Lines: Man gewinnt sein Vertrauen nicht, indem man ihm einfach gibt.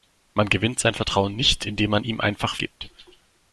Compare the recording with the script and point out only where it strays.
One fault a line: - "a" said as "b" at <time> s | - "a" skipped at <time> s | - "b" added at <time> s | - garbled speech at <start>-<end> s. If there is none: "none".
none